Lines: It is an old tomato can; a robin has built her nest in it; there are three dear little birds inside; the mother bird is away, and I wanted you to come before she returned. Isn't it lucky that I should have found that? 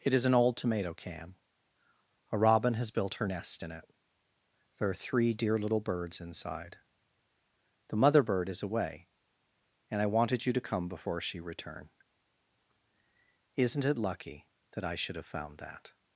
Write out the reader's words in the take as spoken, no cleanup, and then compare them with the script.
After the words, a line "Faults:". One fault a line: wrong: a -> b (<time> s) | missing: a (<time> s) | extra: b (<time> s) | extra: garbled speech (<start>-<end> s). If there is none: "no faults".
It is an old tomato can; a robin has built her nest in it; there are three dear little birds inside; the mother bird is away, and I wanted you to come before she return. Isn't it lucky that I should have found that?
Faults:
wrong: returned -> return (11.4 s)